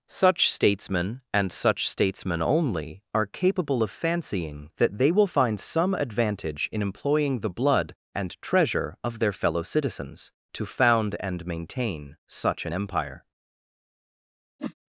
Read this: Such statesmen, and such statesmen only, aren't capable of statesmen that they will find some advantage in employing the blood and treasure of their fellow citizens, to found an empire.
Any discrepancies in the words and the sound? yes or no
yes